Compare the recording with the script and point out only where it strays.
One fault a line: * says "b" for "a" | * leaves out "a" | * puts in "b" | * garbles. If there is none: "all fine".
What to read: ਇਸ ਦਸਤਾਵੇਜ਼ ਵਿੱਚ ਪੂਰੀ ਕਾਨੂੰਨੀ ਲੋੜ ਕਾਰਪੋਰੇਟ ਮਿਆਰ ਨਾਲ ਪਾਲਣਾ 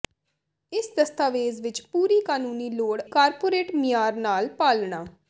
all fine